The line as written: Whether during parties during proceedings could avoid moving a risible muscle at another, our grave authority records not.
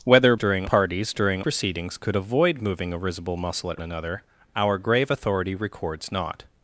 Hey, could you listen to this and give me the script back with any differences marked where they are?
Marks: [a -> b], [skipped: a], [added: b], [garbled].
Whether during parties during proceedings could avoid moving a risible muscle at another, our grave authority records not.